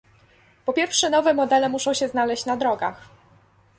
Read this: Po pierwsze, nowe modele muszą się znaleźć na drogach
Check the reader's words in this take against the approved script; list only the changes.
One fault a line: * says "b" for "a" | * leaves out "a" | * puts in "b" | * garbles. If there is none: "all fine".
all fine